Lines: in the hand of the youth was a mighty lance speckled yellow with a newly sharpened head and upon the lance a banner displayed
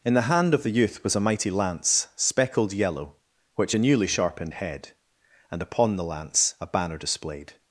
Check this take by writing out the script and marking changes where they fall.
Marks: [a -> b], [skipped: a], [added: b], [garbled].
in the hand of the youth was a mighty lance speckled yellow [with -> which] a newly sharpened head and upon the lance a banner displayed